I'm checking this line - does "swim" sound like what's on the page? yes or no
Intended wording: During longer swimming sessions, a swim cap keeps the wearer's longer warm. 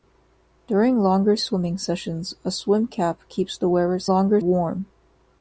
yes